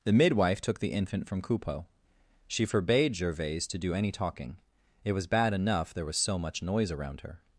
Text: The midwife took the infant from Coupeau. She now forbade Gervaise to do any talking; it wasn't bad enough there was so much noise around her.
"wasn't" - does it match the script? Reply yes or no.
no